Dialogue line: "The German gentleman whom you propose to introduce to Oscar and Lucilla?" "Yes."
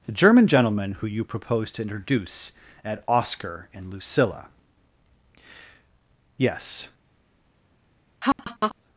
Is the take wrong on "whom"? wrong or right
wrong